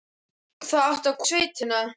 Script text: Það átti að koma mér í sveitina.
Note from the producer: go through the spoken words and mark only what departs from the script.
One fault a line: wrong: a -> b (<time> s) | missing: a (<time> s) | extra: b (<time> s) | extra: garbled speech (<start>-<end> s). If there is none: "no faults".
missing: koma mér (1.2 s)